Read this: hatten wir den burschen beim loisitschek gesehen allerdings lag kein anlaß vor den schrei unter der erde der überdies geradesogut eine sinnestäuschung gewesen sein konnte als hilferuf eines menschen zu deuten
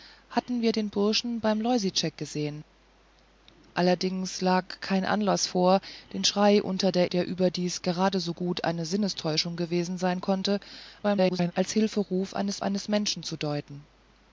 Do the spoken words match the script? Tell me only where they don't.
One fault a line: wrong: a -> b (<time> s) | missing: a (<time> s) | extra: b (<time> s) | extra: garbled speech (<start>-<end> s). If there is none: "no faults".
missing: erde (7.1 s)
extra: garbled speech (11.0-11.5 s)
extra: eines (12.6 s)